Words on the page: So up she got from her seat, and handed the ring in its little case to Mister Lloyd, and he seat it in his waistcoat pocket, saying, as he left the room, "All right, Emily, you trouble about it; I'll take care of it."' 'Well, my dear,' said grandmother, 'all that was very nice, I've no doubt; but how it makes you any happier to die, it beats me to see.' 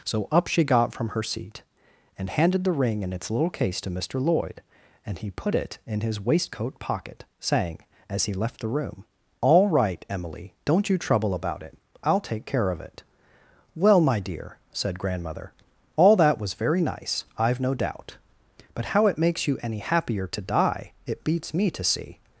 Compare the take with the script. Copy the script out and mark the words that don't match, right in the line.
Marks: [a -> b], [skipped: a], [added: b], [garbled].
So up she got from her seat, and handed the ring in its little case to Mister Lloyd, and he [seat -> put] it in his waistcoat pocket, saying, as he left the room, "All right, Emily, [added: don't] you trouble about it; I'll take care of it."' 'Well, my dear,' said grandmother, 'all that was very nice, I've no doubt; but how it makes you any happier to die, it beats me to see.'